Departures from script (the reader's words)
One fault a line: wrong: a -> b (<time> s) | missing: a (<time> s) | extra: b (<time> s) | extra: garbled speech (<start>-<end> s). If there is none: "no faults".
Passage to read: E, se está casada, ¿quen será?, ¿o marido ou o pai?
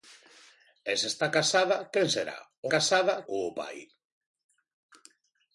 wrong: marido -> casada (2.7 s)